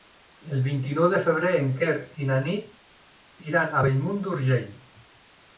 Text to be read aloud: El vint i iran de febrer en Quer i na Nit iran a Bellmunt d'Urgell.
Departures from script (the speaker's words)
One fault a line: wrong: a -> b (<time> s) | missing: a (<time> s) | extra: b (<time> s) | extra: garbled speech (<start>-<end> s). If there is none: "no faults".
wrong: iran -> nou (1.0 s)